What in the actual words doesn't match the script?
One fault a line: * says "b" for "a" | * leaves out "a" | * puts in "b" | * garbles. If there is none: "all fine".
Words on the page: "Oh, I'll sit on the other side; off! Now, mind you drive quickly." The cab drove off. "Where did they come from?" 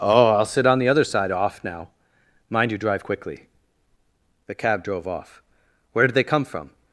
all fine